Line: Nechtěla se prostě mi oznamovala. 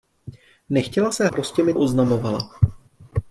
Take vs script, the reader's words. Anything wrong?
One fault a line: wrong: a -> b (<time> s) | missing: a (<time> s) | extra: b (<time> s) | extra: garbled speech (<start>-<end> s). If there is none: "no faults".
no faults